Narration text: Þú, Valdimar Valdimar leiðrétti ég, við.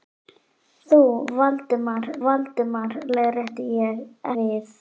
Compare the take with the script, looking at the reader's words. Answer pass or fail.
pass